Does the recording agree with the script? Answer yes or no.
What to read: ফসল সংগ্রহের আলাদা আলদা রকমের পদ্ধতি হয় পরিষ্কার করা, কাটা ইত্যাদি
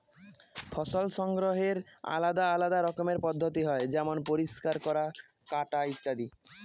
no